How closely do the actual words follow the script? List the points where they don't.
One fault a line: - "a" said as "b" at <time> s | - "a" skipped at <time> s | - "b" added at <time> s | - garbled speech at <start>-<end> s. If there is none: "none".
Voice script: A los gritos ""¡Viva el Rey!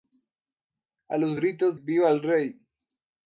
none